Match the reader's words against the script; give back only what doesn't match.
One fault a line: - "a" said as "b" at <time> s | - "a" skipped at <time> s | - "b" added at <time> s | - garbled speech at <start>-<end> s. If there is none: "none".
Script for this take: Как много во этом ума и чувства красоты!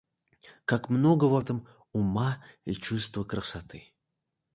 none